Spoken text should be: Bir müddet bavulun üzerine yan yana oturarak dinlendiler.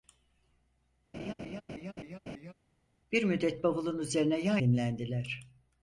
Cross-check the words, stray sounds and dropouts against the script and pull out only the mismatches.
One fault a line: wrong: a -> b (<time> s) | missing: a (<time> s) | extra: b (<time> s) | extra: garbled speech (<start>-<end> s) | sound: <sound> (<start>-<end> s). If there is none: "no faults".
sound: laugh (1.1-2.5 s)
missing: yana oturarak (4.6 s)